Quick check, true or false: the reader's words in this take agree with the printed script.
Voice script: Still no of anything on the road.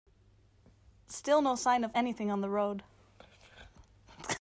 false